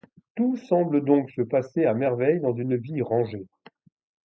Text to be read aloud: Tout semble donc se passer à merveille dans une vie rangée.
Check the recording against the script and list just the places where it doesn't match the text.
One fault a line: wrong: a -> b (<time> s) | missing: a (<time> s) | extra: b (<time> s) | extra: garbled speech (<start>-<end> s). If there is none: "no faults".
no faults